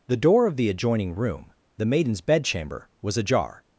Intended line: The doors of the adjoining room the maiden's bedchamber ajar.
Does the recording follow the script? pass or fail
fail